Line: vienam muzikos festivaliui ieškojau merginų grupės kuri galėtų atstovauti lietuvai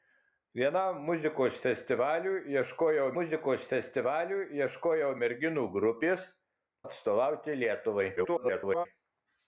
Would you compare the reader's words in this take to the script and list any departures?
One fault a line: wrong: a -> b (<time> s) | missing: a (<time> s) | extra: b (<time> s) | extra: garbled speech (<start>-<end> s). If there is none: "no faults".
extra: muzikos festivaliui ieškojau (3.2 s)
missing: kuri galėtų (6.3 s)
extra: garbled speech (8.2-8.9 s)